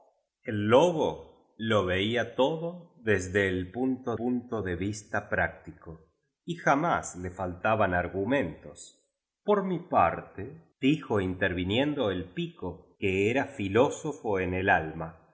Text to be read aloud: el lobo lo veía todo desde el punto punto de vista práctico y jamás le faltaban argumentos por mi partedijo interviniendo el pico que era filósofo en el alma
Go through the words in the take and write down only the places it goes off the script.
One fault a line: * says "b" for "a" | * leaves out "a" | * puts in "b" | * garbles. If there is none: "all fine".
all fine